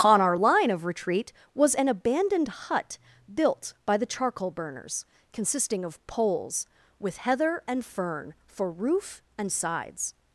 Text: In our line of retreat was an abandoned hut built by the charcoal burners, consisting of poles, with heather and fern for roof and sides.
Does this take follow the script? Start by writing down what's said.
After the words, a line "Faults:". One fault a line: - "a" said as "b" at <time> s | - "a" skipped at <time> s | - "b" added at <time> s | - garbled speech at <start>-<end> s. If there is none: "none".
On our line of retreat was an abandoned hut built by the charcoal burners, consisting of poles, with heather and fern for roof and sides.
Faults:
- "In" said as "On" at 0.0 s